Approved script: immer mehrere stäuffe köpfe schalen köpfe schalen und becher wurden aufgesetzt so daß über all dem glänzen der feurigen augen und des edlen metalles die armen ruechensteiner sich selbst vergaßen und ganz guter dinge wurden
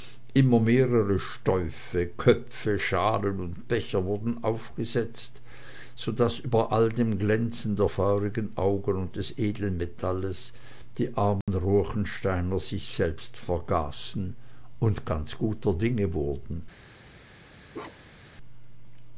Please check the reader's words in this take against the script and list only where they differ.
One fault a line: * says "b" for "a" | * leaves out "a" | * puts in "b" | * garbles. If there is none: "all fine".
* leaves out "köpfe schalen"